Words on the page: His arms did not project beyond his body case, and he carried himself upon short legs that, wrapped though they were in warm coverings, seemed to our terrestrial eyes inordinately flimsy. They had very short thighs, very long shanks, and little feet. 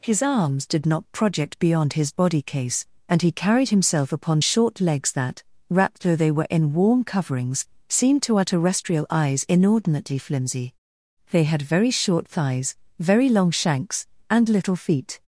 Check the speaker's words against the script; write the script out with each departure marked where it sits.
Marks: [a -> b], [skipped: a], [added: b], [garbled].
His arms did not project beyond his body case, and he carried himself upon short legs that, wrapped though they were in warm coverings, seemed to our terrestrial eyes inordinately flimsy. They had very short thighs, very long shanks, and little feet.